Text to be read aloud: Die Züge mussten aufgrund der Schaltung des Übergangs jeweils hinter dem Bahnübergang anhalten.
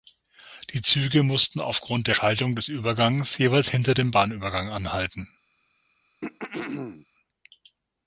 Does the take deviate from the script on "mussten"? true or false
false